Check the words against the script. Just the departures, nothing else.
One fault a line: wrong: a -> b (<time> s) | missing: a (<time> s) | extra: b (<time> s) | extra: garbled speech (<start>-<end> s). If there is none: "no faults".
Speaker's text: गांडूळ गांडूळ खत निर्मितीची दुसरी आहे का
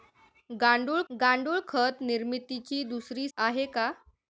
no faults